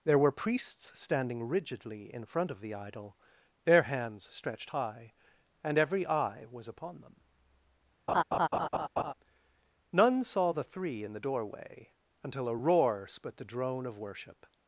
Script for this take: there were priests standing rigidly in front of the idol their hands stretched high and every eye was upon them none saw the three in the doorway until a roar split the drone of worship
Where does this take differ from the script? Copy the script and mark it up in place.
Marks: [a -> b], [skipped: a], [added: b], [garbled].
there were priests standing rigidly in front of the idol their hands stretched high and every eye was upon them none saw the three in the doorway until a roar split the drone of worship